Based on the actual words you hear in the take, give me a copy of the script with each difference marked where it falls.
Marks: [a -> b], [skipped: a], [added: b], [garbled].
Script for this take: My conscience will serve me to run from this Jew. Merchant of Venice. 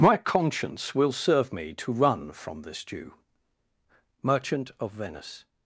My conscience will serve me to run from this Jew. Merchant of Venice.